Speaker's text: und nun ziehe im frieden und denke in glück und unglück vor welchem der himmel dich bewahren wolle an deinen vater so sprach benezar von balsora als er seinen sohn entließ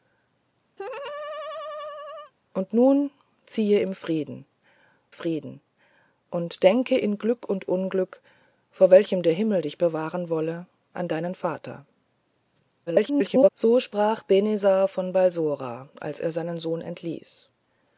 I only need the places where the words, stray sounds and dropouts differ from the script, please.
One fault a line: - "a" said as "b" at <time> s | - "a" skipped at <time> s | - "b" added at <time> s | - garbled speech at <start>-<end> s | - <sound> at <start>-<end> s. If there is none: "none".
- laugh at 0.8-2.3 s
- "frieden" added at 5.1 s
- garbled speech at 12.9-13.5 s